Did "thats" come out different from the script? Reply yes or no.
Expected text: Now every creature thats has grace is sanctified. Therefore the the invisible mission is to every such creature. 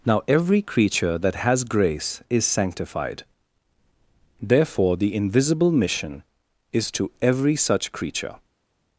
yes